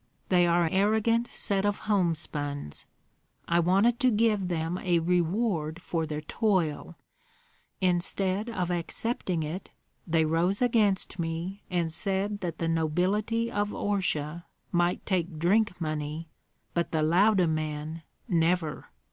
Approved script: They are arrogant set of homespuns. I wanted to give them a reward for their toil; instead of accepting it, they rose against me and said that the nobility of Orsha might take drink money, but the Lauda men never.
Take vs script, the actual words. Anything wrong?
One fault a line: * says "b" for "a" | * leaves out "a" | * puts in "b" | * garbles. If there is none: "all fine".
all fine